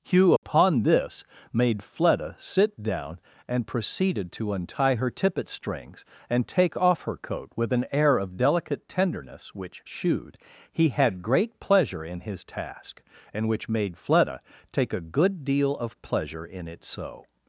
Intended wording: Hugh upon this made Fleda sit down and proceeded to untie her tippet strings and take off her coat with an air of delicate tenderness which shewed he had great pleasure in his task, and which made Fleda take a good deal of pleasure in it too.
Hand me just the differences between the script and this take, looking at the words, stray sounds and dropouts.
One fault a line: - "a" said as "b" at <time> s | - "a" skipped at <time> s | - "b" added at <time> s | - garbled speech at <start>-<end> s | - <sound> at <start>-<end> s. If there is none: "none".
- dropout at 0.4-0.4 s
- "too" said as "so" at 16.8 s